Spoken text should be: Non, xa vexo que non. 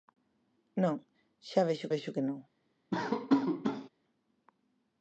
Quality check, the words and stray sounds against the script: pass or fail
fail